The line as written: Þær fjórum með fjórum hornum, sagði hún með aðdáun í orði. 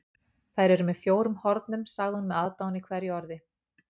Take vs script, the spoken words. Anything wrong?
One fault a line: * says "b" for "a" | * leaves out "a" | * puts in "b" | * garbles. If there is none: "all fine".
* says "eru" for "fjórum"
* puts in "hverju"